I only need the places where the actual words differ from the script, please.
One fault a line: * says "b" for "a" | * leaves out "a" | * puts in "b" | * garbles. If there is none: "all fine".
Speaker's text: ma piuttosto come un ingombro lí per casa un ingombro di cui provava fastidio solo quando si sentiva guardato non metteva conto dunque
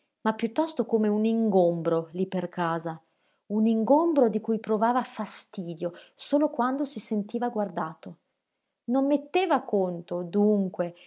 all fine